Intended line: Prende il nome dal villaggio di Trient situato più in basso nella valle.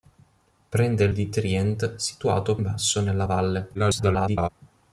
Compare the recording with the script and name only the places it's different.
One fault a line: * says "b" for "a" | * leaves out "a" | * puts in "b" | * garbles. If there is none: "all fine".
* leaves out "nome dal villaggio"
* leaves out "più"
* garbles